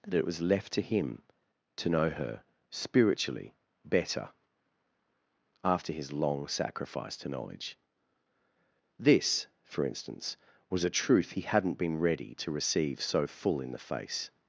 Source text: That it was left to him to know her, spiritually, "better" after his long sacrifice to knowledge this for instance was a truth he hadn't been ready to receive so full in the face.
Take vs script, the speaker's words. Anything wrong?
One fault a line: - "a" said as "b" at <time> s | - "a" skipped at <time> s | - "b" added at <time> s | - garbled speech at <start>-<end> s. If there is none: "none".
none